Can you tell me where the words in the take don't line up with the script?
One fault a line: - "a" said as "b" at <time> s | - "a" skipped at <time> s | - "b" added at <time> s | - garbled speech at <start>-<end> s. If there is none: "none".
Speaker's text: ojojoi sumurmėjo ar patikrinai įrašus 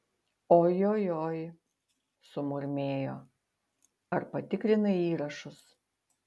none